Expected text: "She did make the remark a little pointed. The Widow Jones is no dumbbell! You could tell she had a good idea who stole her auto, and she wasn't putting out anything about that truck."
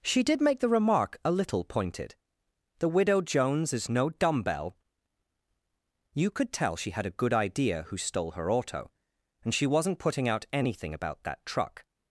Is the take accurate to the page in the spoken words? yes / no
yes